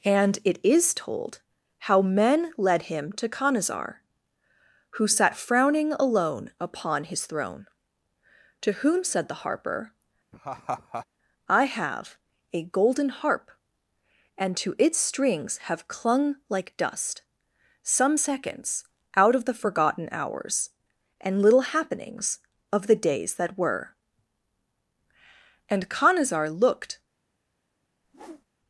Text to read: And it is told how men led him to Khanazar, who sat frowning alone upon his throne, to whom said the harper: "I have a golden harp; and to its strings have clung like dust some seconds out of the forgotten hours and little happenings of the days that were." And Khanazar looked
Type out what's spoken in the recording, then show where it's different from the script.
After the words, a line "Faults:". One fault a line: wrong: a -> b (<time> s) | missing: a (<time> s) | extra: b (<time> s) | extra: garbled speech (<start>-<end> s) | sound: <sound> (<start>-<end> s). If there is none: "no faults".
And it is told how men led him to Khanazar, who sat frowning alone upon his throne, to whom said the harper: "I have a golden harp; and to its strings have clung like dust some seconds out of the forgotten hours and little happenings of the days that were." And Khanazar looked
Faults:
sound: laugh (10.3-11.1 s)
sound: whoosh (28.0-28.5 s)